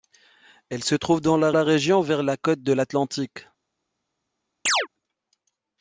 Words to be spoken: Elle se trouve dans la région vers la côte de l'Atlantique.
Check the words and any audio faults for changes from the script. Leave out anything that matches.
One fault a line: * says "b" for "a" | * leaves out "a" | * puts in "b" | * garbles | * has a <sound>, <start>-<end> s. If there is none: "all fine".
* puts in "la"
* has a chirp, 4.7-4.9 s